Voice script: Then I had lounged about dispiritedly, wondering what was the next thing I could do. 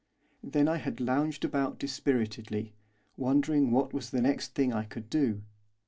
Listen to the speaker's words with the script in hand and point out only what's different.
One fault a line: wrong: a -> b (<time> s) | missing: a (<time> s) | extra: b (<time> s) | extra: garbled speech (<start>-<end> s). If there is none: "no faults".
no faults